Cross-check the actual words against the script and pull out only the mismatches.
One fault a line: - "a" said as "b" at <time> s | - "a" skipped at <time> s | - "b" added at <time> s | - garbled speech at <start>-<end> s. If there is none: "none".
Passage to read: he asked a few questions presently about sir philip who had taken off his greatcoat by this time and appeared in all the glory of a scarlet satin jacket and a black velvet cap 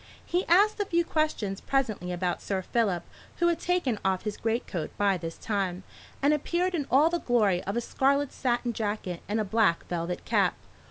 none